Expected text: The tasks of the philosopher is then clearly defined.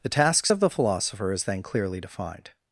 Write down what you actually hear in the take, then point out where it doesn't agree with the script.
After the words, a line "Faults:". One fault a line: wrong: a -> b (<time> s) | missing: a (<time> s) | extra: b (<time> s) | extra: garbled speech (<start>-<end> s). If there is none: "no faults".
The tasks of the philosopher is then clearly defined.
Faults:
no faults